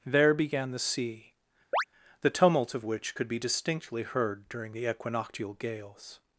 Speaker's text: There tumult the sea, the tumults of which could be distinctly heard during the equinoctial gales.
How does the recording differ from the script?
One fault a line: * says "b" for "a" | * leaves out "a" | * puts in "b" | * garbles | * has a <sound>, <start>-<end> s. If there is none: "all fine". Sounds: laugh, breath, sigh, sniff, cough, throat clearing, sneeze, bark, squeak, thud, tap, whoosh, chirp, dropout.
* says "began" for "tumult"
* has a chirp, 1.7-1.8 s
* says "tumult" for "tumults"